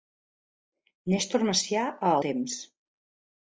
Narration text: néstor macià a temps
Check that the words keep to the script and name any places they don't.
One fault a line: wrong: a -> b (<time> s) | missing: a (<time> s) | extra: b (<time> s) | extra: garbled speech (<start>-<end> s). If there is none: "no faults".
no faults